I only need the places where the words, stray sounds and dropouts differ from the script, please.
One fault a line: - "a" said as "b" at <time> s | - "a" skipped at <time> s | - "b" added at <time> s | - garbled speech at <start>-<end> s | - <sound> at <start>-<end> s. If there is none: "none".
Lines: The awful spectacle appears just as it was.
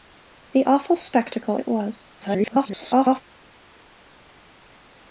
- "appears just as" skipped at 1.6 s
- garbled speech at 2.2-3.2 s